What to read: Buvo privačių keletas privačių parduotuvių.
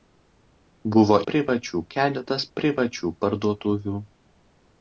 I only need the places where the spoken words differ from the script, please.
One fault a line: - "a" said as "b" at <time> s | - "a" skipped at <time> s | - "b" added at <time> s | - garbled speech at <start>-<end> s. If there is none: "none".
none